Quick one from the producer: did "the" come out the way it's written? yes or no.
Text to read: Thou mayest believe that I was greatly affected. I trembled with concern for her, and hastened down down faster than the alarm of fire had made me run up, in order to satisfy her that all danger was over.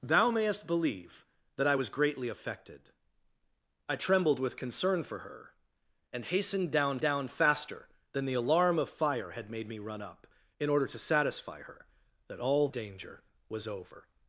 yes